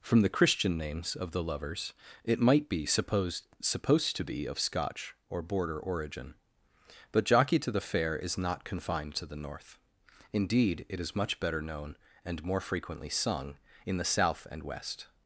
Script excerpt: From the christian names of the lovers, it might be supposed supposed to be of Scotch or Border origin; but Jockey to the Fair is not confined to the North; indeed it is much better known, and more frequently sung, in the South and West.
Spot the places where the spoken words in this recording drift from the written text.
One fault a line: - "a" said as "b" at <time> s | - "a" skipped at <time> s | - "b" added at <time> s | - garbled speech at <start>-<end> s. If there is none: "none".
none